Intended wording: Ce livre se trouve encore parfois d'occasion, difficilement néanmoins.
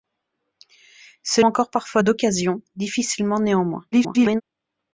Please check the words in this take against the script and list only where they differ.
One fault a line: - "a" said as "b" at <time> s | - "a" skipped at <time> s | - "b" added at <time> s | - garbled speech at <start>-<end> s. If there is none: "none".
- "livre se trouve" skipped at 1.4 s
- garbled speech at 3.9-4.4 s